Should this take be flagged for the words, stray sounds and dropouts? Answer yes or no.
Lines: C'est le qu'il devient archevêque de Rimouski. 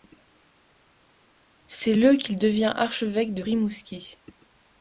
no